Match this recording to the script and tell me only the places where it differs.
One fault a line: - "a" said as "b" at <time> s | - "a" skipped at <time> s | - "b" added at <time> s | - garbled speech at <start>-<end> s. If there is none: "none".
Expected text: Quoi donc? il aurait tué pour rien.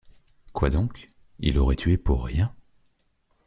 none